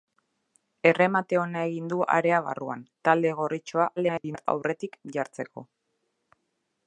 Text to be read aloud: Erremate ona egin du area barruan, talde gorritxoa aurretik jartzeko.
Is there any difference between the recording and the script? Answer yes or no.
yes